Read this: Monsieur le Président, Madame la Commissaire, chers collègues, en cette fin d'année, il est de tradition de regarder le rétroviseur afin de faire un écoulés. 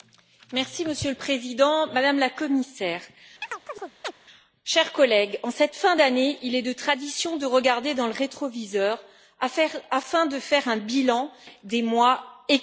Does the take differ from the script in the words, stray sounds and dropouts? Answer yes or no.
yes